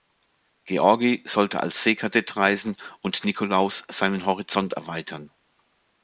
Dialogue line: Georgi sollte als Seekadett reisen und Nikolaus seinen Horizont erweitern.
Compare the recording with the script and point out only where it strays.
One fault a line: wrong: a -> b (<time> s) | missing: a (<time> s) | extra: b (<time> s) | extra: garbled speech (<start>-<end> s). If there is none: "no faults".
no faults